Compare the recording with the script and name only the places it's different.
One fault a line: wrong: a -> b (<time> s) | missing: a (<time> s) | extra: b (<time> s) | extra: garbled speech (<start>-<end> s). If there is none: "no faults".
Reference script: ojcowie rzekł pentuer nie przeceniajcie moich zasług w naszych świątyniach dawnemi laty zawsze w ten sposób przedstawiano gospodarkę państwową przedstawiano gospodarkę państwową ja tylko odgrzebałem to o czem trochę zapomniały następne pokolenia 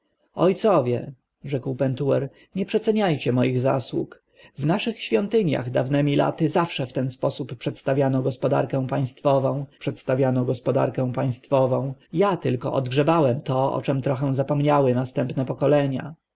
no faults